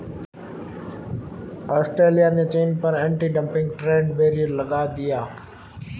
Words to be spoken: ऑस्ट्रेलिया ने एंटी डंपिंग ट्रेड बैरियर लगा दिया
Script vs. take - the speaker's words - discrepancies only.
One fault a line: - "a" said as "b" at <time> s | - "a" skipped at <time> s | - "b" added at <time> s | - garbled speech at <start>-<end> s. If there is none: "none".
- "चीन पर" added at 2.5 s